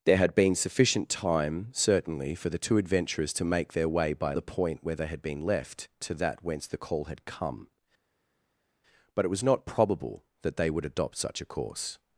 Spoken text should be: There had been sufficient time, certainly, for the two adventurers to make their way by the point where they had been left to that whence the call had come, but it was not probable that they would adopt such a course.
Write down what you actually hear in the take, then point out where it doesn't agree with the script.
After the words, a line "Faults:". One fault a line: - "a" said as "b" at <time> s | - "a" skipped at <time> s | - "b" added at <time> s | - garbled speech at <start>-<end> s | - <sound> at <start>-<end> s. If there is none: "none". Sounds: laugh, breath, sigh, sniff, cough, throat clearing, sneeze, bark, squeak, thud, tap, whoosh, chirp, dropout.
There had been sufficient time, certainly, for the two adventurers to make their way by the point where they had been left to that whence the call had come, but it was not probable that they would adopt such a course.
Faults:
none